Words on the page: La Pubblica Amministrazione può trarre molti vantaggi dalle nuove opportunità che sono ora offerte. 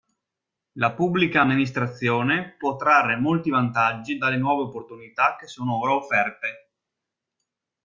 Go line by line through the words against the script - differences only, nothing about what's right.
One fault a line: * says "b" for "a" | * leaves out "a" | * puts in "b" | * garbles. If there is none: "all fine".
all fine